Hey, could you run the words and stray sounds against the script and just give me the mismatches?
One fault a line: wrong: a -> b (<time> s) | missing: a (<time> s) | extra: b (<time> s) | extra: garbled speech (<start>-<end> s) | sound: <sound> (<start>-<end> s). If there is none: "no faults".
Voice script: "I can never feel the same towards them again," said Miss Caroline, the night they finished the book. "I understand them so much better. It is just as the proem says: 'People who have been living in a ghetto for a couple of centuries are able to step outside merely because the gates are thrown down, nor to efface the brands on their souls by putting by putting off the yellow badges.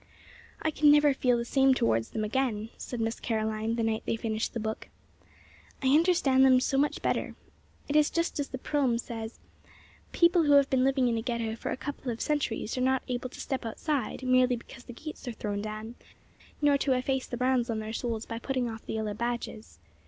extra: not (12.8 s)
missing: by putting (18.7 s)